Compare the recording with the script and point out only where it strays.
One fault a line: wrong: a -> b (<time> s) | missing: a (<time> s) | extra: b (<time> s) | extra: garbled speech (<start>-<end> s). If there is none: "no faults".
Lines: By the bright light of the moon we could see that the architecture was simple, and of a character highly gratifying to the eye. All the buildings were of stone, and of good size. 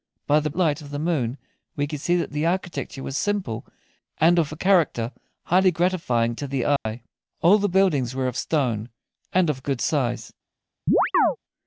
missing: bright (0.5 s)